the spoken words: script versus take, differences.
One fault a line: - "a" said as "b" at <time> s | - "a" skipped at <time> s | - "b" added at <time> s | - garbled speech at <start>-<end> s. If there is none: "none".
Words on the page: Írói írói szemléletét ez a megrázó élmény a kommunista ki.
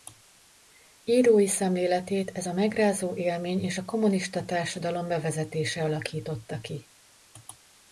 - "írói" skipped at 1.5 s
- "és" added at 3.6 s
- "társadalom bevezetése alakította" added at 4.5 s